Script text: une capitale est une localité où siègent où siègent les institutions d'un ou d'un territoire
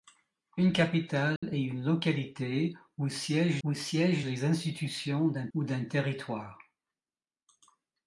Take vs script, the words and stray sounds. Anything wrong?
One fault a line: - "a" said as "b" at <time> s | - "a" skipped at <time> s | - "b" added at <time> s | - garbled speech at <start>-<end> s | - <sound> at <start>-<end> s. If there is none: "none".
- dropout at 1.4-1.4 s